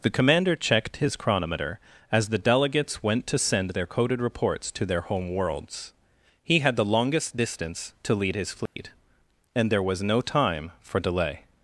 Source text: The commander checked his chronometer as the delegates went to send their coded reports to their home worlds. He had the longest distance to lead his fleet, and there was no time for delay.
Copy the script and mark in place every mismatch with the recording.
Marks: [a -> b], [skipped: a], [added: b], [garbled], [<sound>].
The commander checked his chronometer as the delegates went to send their coded reports to their home worlds. He had the longest distance to lead his fleet, [dropout] and there was no time for delay.